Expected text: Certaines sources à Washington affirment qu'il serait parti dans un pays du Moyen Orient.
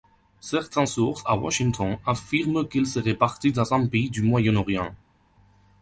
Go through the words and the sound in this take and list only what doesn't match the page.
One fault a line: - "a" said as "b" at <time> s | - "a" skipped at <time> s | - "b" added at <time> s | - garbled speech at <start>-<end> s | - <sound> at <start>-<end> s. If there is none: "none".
none